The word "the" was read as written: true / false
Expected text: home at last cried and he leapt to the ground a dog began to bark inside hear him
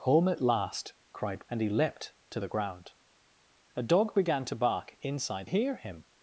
true